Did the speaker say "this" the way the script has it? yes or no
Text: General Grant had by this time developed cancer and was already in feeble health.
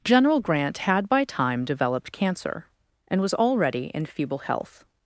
no